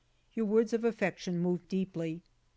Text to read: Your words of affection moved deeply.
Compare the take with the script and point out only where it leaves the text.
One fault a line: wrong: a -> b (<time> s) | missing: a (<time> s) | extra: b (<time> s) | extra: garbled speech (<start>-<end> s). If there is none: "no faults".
no faults